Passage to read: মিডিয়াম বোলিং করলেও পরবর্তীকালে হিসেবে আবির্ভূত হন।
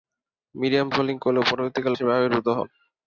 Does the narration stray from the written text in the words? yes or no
no